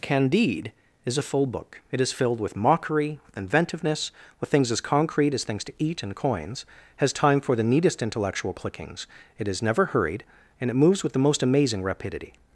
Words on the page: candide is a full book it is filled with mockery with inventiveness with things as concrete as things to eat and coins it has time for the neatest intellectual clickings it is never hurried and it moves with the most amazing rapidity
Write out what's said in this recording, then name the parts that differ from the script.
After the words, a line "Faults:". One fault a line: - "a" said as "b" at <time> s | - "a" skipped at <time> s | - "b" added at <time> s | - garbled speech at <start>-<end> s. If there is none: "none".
candide is a full book it is filled with mockery with inventiveness with things as concrete as things to eat and coins has time for the neatest intellectual clickings it is never hurried and it moves with the most amazing rapidity
Faults:
- "it" skipped at 6.7 s